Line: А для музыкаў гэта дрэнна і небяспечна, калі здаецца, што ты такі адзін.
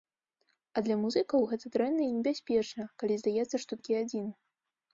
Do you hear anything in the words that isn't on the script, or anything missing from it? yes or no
yes